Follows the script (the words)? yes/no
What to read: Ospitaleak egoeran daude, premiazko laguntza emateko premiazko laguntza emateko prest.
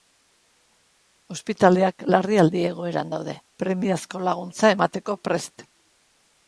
no